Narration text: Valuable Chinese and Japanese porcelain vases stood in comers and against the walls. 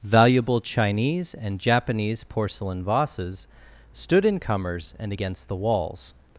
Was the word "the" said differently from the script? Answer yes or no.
no